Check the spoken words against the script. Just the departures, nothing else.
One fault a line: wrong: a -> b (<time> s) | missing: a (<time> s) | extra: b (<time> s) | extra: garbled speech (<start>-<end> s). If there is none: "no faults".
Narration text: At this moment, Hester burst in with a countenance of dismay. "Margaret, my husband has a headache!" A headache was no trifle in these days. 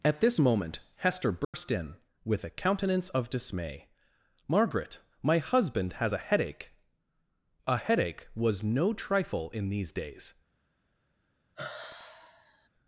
no faults